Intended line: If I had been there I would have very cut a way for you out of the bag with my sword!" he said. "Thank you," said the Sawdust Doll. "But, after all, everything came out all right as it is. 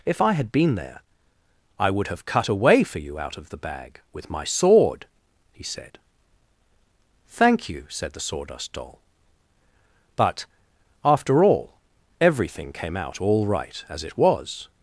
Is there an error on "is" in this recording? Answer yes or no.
yes